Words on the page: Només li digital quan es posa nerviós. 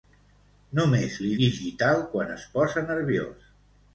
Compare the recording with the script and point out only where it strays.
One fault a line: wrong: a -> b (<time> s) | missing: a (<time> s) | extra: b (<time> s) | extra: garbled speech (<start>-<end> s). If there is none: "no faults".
no faults